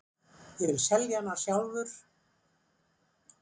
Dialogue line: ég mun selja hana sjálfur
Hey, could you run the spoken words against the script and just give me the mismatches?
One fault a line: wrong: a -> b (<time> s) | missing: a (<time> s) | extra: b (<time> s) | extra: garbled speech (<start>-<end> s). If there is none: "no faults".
wrong: mun -> vil (0.7 s)